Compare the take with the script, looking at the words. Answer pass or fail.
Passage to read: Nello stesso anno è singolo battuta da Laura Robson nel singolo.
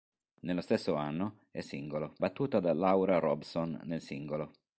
pass